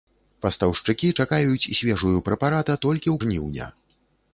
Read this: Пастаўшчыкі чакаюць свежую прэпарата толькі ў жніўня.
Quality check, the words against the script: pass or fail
pass